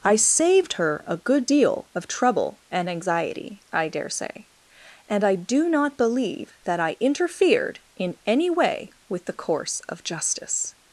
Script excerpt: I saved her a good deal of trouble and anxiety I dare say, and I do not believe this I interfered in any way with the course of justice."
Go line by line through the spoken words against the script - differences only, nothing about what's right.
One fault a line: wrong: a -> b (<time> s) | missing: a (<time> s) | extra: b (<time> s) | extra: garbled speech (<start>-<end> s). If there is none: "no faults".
wrong: this -> that (6.6 s)